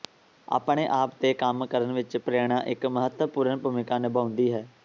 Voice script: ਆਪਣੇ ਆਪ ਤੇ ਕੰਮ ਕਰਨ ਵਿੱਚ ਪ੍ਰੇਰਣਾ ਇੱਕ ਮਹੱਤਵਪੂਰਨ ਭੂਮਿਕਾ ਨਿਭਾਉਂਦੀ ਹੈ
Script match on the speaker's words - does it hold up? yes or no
yes